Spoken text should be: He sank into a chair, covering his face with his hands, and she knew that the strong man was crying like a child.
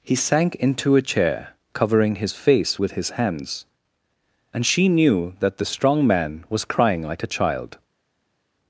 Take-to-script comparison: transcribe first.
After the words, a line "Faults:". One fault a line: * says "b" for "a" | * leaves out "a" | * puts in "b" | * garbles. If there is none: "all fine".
He sank into a chair, covering his face with his hands, and she knew that the strong man was crying like a child.
Faults:
all fine